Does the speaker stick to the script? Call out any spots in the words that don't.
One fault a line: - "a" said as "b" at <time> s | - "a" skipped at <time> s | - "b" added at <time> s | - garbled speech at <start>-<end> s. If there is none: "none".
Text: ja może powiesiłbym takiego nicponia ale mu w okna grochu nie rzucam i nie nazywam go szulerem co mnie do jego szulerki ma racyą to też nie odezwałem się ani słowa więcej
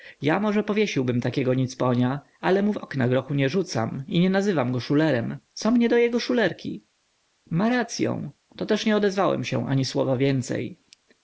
none